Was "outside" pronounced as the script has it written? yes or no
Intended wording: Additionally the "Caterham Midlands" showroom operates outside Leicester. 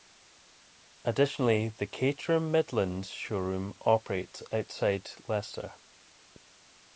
yes